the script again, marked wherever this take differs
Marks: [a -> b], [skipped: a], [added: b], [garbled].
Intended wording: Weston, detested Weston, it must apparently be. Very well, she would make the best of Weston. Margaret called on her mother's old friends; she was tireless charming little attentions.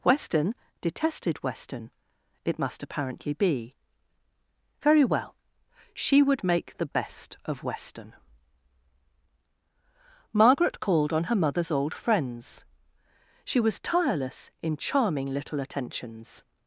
Weston, detested Weston, it must apparently be. Very well, she would make the best of Weston. Margaret called on her mother's old friends; she was tireless [added: in] charming little attentions.